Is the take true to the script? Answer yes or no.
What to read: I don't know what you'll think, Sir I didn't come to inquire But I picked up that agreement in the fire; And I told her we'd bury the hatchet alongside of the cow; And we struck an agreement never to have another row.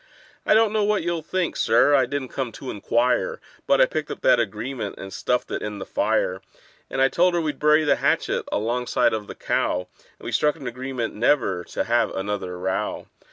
no